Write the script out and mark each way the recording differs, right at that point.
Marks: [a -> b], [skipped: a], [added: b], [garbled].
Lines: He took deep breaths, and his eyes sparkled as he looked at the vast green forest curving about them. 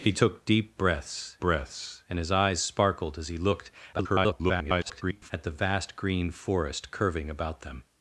He took deep breaths, [added: breaths] and his eyes sparkled as he looked [garbled] at the vast green forest curving about them.